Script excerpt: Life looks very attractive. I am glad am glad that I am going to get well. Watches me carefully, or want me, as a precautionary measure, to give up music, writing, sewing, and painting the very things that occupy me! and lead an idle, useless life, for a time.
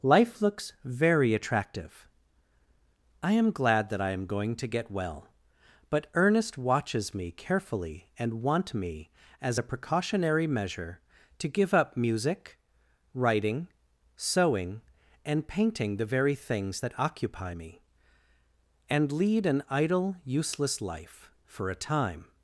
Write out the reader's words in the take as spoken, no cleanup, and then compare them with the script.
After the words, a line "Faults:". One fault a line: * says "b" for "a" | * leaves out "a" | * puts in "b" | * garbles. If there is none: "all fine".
Life looks very attractive. I am glad that I am going to get well. But Ernest watches me carefully, and want me, as a precautionary measure, to give up music, writing, sewing, and painting the very things that occupy me! and lead an idle, useless life, for a time.
Faults:
* leaves out "am glad"
* puts in "But Ernest"
* says "and" for "or"